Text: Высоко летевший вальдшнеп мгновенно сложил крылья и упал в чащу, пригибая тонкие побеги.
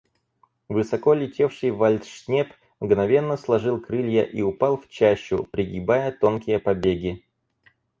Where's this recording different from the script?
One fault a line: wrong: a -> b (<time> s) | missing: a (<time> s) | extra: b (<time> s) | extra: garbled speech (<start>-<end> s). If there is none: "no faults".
no faults